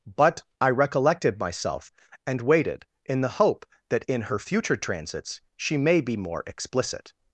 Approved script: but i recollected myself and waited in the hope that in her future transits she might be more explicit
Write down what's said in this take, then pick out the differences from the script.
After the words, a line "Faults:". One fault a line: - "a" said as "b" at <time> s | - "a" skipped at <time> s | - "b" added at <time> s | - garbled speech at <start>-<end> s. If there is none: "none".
but i recollected myself and waited in the hope that in her future transits she may be more explicit
Faults:
- "might" said as "may" at 5.8 s